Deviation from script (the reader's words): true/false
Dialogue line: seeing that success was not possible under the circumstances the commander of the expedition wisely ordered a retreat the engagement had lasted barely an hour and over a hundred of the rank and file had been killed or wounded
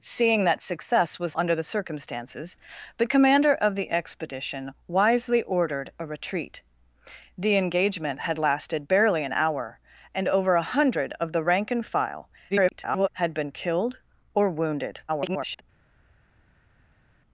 true